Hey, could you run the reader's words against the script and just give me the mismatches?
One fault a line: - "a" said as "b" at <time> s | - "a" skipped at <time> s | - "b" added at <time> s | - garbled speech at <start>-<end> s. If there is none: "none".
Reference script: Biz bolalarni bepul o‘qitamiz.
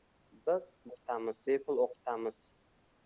- "bolalarni" said as "o‘qitamiz" at 0.9 s